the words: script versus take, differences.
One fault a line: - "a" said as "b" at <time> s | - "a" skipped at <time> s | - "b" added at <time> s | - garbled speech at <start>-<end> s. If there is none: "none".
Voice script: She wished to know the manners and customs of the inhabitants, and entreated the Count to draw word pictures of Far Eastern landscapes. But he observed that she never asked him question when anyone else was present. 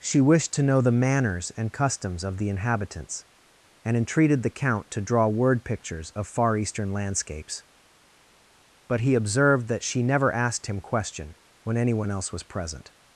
none